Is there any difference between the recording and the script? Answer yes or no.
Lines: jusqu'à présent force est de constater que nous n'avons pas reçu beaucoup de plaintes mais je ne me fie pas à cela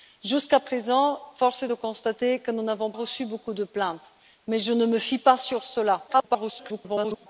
yes